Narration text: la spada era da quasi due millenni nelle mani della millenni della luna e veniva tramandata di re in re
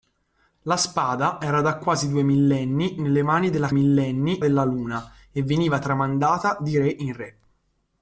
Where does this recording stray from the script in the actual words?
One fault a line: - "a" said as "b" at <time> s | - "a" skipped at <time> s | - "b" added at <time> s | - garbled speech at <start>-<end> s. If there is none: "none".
none